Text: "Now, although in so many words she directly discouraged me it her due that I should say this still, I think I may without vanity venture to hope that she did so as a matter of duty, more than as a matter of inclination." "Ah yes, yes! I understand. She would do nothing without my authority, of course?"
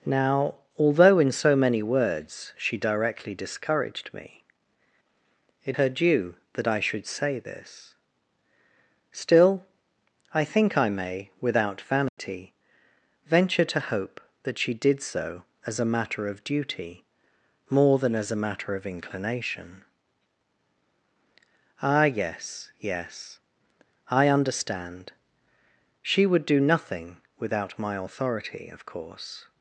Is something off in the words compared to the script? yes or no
no